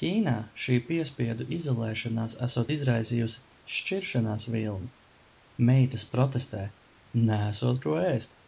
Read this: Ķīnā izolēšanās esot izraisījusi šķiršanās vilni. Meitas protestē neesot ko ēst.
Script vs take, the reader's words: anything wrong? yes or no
yes